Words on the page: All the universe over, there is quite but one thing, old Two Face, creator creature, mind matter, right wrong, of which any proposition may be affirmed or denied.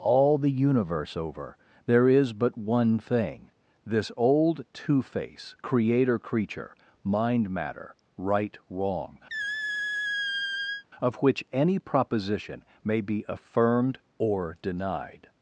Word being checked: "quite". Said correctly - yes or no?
no